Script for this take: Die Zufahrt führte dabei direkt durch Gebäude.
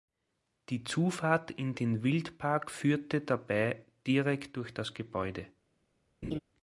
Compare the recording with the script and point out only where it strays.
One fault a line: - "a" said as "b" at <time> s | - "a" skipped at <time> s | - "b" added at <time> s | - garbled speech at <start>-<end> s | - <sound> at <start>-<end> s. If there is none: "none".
- "in den Wildpark" added at 1.5 s
- "das" added at 4.7 s
- laugh at 6.2-6.4 s